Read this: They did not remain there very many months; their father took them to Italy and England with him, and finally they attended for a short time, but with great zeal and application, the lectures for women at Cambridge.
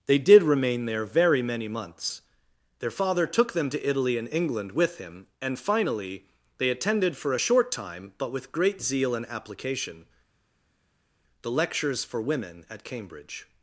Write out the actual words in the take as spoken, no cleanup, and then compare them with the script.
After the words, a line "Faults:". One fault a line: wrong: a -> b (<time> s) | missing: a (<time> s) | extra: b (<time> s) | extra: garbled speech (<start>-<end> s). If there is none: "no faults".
They did remain there very many months; their father took them to Italy and England with him, and finally they attended for a short time, but with great zeal and application, the lectures for women at Cambridge.
Faults:
missing: not (0.4 s)